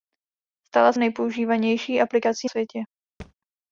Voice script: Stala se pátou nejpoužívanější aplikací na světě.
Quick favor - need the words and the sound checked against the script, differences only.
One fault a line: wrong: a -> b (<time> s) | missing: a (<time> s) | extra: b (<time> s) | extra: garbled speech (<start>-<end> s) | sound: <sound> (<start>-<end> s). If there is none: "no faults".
missing: se pátou (0.9 s)
missing: na (2.5 s)
sound: thud (3.2-3.3 s)